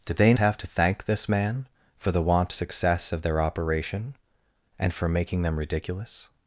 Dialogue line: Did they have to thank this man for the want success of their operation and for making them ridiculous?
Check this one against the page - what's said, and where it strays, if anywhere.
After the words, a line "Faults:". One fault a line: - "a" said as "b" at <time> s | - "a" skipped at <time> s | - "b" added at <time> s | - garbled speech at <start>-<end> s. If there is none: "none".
Did they have to thank this man for the want success of their operation and for making them ridiculous?
Faults:
none